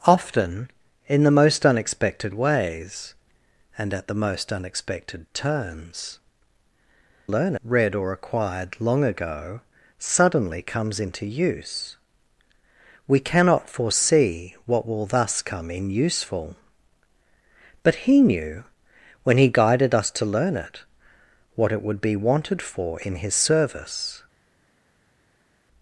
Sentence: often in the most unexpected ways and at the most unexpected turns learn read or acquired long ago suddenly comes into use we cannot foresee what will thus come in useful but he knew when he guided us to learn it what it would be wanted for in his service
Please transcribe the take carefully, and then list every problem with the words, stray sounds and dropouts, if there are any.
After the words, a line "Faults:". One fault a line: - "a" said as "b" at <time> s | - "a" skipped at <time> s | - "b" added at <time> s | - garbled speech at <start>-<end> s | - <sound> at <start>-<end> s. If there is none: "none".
often in the most unexpected ways and at the most unexpected turns learn read or acquired long ago suddenly comes into use we cannot foresee what will thus come in useful but he knew when he guided us to learn it what it would be wanted for in his service
Faults:
none